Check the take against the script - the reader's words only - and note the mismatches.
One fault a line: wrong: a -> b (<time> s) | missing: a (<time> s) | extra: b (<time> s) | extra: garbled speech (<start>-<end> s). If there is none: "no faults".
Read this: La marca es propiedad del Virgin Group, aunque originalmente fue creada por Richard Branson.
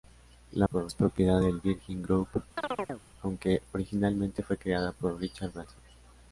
wrong: marca -> por (0.6 s)